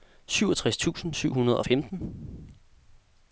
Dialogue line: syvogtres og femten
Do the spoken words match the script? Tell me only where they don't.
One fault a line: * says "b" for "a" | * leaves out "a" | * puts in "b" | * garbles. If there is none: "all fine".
* puts in "tusind syv hundrede"